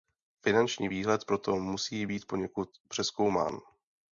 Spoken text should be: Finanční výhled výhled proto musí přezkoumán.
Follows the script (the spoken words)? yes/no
no